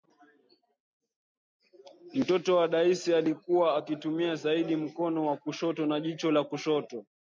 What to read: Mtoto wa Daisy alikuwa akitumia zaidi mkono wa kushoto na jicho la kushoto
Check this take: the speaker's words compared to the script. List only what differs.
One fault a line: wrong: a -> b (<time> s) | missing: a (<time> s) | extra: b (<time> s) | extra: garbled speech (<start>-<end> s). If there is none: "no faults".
no faults